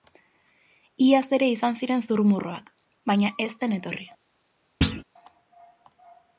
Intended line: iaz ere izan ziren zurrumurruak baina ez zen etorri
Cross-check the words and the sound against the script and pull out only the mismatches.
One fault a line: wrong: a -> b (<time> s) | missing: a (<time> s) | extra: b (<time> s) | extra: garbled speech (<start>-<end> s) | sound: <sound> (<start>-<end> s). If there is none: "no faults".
sound: thud (4.8-5.0 s)